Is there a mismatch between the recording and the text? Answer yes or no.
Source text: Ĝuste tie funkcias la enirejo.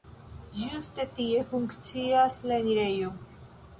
no